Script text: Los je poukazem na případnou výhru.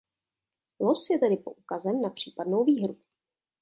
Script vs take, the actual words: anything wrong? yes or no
yes